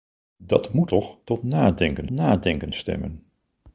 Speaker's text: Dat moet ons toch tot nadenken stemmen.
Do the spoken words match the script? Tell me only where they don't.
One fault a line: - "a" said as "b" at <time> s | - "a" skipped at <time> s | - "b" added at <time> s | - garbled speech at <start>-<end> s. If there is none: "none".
- "ons" skipped at 0.9 s
- "nadenken" added at 2.1 s